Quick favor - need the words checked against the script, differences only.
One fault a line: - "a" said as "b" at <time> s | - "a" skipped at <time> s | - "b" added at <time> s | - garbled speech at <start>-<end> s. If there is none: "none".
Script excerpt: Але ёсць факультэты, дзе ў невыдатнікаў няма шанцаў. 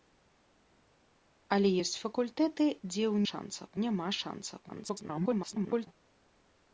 - "невыдатнікаў" said as "шанцаў" at 3.3 s
- garbled speech at 4.7-5.9 s